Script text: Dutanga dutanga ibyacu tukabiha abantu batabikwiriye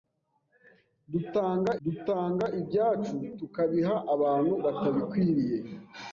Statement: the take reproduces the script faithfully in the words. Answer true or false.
true